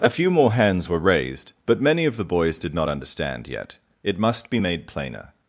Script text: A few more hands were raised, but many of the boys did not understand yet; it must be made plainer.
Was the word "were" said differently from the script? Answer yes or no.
no